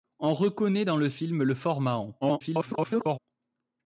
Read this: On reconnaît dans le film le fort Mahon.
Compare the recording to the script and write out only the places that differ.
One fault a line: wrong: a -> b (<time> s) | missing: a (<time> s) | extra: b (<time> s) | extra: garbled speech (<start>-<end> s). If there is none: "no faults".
extra: garbled speech (2.2-3.2 s)